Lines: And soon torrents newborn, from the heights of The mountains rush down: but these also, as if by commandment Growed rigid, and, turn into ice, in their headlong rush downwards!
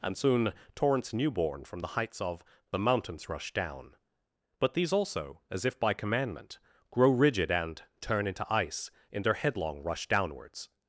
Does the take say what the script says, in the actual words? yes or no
no